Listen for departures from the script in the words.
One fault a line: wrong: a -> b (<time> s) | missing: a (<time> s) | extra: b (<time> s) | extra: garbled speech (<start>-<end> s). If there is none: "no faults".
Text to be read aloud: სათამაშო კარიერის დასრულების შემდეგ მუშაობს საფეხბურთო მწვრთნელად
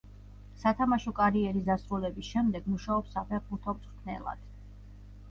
no faults